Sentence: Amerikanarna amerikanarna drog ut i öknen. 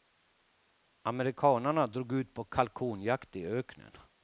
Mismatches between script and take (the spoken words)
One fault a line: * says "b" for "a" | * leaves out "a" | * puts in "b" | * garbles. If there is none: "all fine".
* leaves out "amerikanarna"
* puts in "på kalkonjakt"